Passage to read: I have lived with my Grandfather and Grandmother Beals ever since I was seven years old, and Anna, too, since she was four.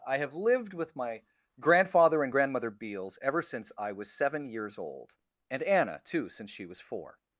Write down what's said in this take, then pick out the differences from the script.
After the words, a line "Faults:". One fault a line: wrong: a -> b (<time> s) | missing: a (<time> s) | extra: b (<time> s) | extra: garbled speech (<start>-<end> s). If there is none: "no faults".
I have lived with my Grandfather and Grandmother Beals ever since I was seven years old, and Anna, too, since she was four.
Faults:
no faults